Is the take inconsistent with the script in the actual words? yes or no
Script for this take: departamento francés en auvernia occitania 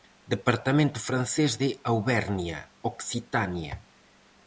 yes